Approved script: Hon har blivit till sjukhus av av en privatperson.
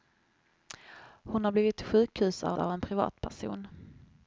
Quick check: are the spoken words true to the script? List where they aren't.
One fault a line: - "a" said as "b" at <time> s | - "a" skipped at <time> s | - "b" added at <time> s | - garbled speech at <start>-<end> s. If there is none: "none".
none